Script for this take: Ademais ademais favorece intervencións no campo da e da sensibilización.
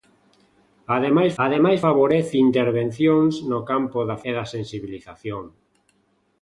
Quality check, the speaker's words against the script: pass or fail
pass